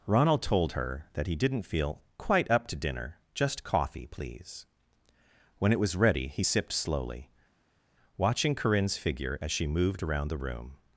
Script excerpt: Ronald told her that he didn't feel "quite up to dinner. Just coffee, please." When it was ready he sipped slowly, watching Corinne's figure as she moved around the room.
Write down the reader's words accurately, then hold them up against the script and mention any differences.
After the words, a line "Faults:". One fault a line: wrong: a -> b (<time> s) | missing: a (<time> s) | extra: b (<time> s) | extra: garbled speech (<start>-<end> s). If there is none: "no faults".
Ronald told her that he didn't feel "quite up to dinner. Just coffee, please." When it was ready he sipped slowly, watching Corinne's figure as she moved around the room.
Faults:
no faults